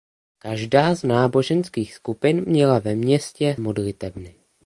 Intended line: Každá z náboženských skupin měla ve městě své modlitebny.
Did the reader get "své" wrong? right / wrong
wrong